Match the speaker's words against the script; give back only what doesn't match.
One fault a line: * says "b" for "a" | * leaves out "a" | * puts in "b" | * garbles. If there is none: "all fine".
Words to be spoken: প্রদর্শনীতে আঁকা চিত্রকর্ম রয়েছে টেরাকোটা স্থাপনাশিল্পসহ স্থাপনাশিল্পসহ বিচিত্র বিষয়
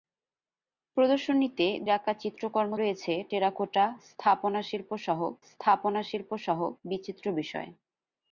all fine